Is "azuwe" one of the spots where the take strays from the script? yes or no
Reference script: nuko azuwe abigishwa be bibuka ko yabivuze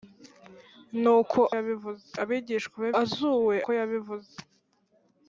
yes